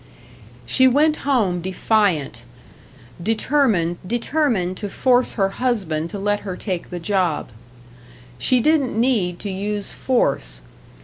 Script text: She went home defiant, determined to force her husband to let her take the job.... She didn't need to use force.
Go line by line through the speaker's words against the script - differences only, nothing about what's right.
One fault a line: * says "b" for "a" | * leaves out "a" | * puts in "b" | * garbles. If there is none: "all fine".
* puts in "determined"